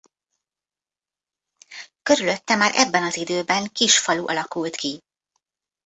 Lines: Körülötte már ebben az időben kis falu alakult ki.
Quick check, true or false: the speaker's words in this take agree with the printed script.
true